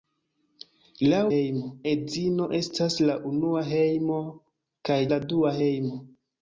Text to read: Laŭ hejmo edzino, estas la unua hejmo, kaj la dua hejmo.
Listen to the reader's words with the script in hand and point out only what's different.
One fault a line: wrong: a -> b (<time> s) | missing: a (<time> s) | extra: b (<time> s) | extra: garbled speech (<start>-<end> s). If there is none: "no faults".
no faults